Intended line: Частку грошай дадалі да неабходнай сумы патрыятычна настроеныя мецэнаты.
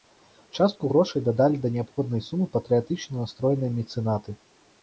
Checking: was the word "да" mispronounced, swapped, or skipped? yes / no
no